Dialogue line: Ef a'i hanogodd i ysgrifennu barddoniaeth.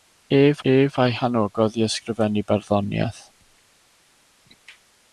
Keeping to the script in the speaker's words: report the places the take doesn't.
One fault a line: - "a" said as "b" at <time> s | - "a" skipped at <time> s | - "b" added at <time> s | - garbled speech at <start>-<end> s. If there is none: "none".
- "ef" added at 0.7 s